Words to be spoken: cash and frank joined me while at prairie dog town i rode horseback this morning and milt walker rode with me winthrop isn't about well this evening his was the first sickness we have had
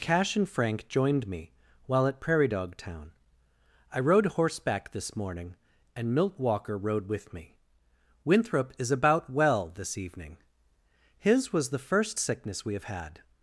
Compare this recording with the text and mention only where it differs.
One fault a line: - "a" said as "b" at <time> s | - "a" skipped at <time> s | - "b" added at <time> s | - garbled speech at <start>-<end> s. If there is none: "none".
- "isn't" said as "is" at 8.8 s